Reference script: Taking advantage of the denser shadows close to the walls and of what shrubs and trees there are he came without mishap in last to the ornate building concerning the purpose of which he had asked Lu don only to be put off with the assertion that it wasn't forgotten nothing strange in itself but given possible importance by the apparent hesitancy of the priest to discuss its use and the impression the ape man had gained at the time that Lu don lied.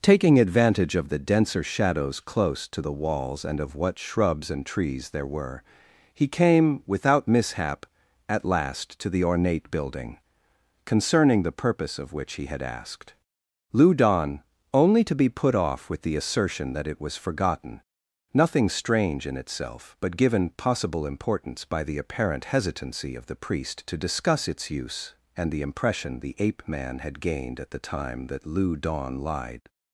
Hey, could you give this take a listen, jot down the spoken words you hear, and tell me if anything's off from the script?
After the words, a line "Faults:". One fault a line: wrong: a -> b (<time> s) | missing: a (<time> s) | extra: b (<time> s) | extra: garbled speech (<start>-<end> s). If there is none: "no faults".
Taking advantage of the denser shadows close to the walls and of what shrubs and trees there were he came without mishap at last to the ornate building concerning the purpose of which he had asked Lu don only to be put off with the assertion that it was forgotten nothing strange in itself but given possible importance by the apparent hesitancy of the priest to discuss its use and the impression the ape man had gained at the time that Lu don lied.
Faults:
wrong: are -> were (5.3 s)
wrong: in -> at (8.3 s)
wrong: wasn't -> was (17.0 s)